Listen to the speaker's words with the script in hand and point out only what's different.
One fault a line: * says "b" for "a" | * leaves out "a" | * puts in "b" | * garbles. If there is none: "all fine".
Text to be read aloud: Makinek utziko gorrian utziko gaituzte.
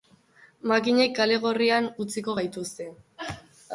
* says "kale" for "utziko"